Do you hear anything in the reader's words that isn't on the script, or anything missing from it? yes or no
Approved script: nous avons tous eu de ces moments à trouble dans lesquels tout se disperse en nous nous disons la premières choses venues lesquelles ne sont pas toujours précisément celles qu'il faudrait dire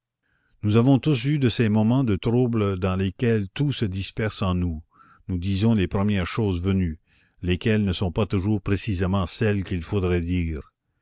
yes